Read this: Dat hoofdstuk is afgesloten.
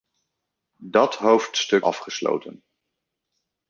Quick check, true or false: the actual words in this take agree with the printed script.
false